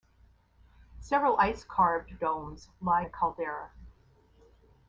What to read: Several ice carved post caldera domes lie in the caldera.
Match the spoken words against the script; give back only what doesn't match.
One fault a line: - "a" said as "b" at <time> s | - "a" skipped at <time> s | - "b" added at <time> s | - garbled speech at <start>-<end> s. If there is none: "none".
- "post caldera" skipped at 2.1 s
- "in" skipped at 3.0 s